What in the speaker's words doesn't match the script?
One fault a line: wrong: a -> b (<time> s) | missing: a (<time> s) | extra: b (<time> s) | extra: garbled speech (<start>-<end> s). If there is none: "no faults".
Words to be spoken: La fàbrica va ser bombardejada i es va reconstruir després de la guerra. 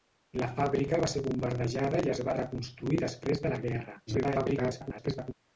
extra: garbled speech (4.1-5.3 s)